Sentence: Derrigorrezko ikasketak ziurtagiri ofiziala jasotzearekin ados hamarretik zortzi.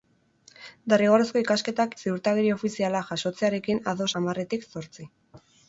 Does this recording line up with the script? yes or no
yes